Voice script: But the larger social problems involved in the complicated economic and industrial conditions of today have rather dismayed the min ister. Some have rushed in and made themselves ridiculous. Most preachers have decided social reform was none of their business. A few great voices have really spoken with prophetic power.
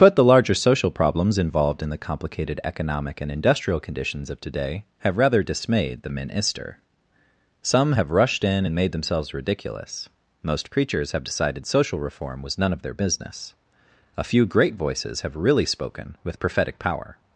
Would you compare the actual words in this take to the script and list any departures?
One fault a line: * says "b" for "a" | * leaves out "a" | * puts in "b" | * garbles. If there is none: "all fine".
all fine